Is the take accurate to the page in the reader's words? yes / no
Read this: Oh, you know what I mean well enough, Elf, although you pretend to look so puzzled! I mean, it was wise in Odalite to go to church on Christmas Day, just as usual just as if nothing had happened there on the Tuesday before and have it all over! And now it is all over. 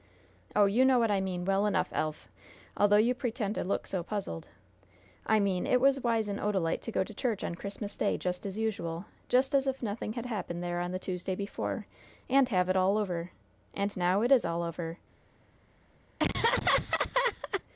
yes